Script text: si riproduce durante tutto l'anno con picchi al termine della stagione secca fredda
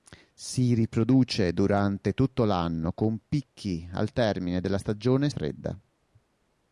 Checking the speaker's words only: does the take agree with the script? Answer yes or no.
no